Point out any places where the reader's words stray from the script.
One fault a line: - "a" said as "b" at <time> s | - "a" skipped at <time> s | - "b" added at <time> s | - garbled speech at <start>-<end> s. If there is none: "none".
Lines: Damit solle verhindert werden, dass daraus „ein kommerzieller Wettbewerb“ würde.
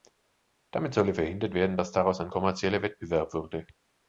none